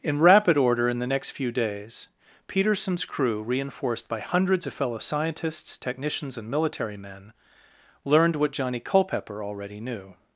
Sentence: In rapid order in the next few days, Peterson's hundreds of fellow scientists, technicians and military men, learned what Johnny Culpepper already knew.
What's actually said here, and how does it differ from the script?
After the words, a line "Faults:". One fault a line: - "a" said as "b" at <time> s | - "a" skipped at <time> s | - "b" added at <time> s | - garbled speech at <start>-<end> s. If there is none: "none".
In rapid order in the next few days, Peterson's crew reinforced by hundreds of fellow scientists, technicians and military men, learned what Johnny Culpepper already knew.
Faults:
- "crew reinforced by" added at 3.0 s